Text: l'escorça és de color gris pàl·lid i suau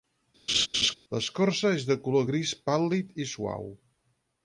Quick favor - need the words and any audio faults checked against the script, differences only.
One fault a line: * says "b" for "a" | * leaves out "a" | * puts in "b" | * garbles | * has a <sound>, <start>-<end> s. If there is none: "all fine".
* has a laugh, 0.5-0.9 s